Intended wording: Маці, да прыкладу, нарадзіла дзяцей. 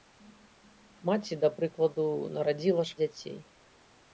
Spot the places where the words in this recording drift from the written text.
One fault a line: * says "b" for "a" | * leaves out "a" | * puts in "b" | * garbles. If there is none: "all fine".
all fine